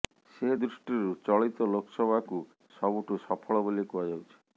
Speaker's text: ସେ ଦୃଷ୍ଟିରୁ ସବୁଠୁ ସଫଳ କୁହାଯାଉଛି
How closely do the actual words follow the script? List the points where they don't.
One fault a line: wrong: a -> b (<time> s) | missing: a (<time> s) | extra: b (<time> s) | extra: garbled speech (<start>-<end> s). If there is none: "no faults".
extra: ଚଳିତ ଲୋକସଭାକୁ (1.2 s)
extra: ବୋଲି (3.7 s)